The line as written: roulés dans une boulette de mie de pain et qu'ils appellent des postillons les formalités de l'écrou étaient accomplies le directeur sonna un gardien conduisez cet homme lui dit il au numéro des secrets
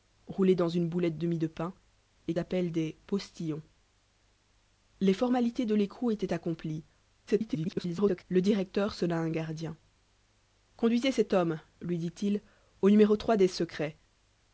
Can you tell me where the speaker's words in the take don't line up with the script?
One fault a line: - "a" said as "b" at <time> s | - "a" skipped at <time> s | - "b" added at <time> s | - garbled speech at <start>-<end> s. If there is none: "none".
- "qu'ils" skipped at 2.3 s
- garbled speech at 7.3-8.2 s